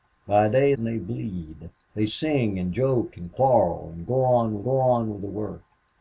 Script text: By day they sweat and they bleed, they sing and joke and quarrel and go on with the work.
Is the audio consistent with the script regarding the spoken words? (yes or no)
no